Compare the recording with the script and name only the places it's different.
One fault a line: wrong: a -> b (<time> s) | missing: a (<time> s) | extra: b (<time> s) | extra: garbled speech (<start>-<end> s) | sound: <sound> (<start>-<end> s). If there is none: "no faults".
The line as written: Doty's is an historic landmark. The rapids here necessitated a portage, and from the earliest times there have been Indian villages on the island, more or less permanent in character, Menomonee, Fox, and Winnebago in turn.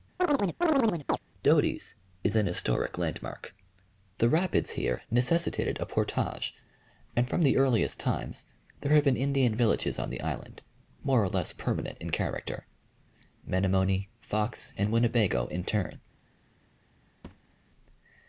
sound: chirp (0.2-1.2 s)
sound: thud (17.2-17.6 s)